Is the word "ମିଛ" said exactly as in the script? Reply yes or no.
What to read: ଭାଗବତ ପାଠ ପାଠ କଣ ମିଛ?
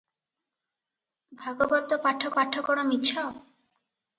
yes